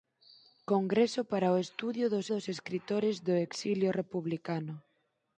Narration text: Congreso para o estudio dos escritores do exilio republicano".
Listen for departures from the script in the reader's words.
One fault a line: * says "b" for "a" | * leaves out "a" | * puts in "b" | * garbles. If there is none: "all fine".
* puts in "dos"